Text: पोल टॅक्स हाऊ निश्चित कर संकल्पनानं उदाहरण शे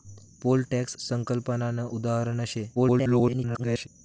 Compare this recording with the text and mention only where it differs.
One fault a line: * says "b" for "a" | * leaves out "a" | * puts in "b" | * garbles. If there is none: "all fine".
* leaves out "हाऊ निश्चित कर"
* garbles